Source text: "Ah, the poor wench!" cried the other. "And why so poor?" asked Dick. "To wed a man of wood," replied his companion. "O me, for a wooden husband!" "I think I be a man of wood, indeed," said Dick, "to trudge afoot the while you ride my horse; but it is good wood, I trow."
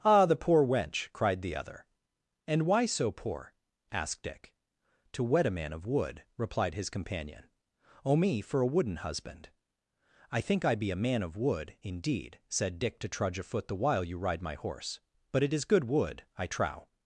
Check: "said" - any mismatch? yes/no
no